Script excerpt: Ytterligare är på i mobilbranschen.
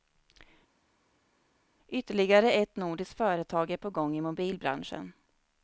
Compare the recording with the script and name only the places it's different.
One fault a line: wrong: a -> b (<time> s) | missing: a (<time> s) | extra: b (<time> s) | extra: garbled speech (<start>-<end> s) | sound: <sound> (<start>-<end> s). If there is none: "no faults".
extra: ett nordiskt företag (2.5 s)
extra: gång (3.9 s)